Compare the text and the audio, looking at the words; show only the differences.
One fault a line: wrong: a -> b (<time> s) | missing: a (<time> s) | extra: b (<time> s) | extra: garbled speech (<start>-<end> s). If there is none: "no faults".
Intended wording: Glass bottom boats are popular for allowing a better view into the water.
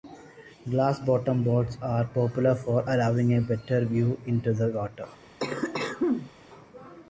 no faults